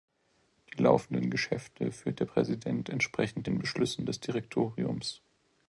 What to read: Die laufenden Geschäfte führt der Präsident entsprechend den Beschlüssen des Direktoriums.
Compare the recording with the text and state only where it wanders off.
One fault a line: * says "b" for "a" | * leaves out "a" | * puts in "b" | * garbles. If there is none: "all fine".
all fine